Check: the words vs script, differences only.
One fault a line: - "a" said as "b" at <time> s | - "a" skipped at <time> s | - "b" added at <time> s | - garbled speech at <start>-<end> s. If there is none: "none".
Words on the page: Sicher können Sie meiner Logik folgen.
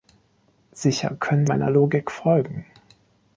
- "Sie" skipped at 1.4 s